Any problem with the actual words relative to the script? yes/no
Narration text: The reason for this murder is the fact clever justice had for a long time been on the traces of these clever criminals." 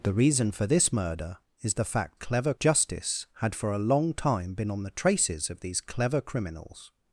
no